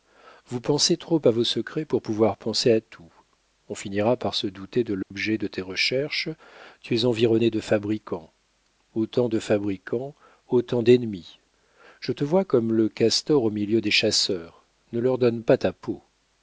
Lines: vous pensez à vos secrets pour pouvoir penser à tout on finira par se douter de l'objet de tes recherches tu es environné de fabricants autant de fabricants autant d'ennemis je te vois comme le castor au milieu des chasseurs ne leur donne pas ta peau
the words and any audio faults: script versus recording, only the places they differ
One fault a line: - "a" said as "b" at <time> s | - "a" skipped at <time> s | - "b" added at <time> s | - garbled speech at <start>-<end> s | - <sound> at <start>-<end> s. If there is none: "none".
- "trop" added at 1.0 s
- dropout at 5.0-5.1 s